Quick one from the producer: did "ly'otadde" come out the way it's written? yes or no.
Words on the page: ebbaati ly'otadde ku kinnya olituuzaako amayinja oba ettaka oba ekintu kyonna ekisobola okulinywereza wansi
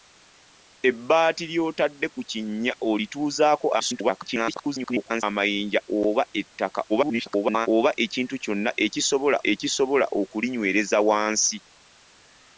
yes